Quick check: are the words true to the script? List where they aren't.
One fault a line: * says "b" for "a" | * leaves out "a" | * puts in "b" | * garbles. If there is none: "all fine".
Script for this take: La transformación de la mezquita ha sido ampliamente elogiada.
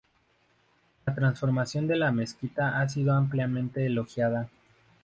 all fine